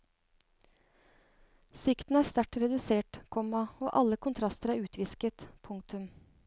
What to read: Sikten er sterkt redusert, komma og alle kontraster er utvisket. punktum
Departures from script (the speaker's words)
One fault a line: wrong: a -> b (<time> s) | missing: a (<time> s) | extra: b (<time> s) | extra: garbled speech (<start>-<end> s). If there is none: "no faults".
no faults